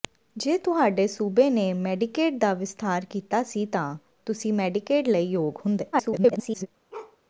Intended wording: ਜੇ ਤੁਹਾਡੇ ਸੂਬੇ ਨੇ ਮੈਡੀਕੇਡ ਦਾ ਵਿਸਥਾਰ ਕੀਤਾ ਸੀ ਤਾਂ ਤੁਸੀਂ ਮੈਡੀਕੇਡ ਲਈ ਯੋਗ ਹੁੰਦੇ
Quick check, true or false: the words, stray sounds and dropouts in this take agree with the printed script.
false